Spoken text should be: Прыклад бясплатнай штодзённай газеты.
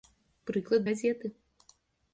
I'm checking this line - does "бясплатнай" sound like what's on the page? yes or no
no